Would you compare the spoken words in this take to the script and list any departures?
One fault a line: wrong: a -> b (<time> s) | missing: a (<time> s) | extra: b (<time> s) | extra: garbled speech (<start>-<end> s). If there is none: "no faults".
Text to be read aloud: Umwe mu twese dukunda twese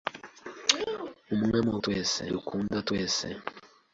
no faults